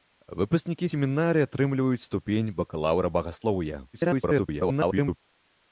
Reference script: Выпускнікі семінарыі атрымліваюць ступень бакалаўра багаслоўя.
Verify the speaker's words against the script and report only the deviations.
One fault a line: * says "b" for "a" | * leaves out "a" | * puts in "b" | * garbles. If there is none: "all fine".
* garbles